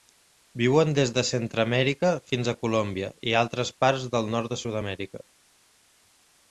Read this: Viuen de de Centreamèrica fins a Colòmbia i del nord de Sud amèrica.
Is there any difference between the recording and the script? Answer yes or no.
yes